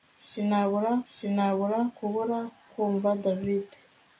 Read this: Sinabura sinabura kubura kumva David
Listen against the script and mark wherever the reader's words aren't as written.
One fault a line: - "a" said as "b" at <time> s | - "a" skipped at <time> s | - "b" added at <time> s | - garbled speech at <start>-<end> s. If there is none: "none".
none